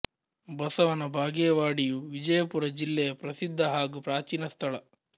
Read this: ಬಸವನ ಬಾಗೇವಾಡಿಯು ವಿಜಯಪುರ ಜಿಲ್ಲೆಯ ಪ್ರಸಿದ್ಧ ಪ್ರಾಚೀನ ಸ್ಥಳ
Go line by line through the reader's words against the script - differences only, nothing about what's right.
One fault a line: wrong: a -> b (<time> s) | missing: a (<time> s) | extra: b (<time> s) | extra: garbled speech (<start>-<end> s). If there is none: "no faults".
extra: ಹಾಗೂ (3.7 s)